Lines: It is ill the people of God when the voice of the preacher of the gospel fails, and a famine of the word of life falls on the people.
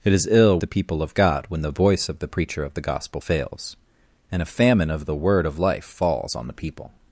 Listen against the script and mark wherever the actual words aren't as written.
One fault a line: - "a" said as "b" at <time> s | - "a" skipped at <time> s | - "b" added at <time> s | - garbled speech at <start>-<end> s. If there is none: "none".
none